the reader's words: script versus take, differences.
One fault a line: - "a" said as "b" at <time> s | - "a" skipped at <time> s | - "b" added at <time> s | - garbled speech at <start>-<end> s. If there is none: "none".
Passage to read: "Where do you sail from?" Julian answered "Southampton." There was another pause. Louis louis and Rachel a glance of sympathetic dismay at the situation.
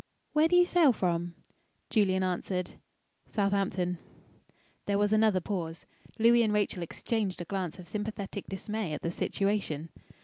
- "louis" skipped at 6.4 s
- "exchanged" added at 6.8 s